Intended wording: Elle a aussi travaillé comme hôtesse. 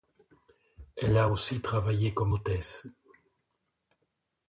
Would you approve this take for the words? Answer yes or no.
yes